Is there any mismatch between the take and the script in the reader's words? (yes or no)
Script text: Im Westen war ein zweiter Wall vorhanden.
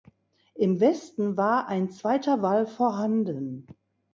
no